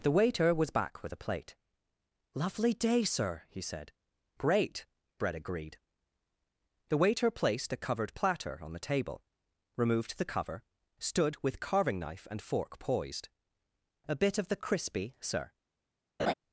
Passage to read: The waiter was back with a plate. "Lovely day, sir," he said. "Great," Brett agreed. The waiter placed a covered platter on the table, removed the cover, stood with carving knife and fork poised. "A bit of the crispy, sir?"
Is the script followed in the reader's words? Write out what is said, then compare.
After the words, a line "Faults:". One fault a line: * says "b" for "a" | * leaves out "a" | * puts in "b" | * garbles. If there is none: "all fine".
The waiter was back with a plate. "Lovely day, sir," he said. "Great," Brett agreed. The waiter placed a covered platter on the table, removed the cover, stood with carving knife and fork poised. "A bit of the crispy, sir?"
Faults:
all fine